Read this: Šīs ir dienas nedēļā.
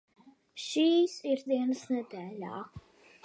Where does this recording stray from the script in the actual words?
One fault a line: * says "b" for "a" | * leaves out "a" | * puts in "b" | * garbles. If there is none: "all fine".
all fine